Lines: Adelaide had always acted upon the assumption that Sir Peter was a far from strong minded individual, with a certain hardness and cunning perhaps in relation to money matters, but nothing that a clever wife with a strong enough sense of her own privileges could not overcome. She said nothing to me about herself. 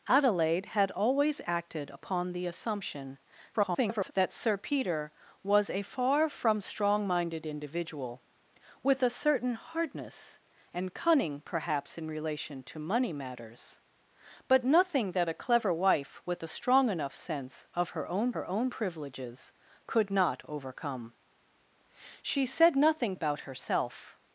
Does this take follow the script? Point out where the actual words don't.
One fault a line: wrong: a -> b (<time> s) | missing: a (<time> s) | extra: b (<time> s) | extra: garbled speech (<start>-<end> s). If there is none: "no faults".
extra: garbled speech (3.5-4.1 s)
extra: her own (18.3 s)
missing: to me (23.2 s)